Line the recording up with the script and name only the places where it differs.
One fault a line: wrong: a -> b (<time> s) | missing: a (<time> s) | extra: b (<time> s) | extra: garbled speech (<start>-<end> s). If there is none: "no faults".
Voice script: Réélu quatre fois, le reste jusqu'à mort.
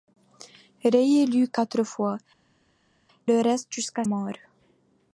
no faults